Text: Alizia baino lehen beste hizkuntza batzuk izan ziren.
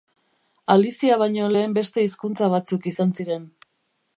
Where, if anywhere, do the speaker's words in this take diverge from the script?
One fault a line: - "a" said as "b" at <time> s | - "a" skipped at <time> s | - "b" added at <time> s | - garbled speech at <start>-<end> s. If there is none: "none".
none